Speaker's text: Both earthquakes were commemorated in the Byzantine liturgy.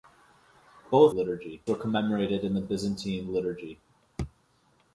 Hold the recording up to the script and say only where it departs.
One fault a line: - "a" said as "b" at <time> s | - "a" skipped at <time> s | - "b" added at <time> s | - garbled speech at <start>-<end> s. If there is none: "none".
- "earthquakes" said as "liturgy" at 1.1 s